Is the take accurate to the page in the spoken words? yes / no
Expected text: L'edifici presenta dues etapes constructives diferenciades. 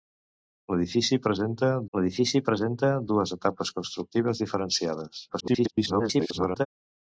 no